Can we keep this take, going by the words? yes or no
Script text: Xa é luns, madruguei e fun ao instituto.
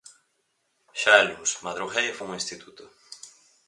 yes